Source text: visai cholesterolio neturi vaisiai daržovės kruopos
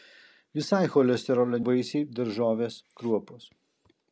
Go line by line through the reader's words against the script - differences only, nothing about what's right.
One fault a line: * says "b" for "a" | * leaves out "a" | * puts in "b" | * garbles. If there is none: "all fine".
* leaves out "neturi"